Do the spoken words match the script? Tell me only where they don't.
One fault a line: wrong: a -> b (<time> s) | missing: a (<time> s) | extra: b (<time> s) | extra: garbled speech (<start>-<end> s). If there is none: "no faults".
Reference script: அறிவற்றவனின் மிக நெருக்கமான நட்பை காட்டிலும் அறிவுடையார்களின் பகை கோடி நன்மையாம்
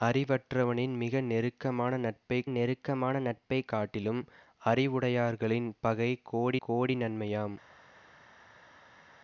extra: நெருக்கமான நட்பை (2.5 s)
extra: கோடி (6.6 s)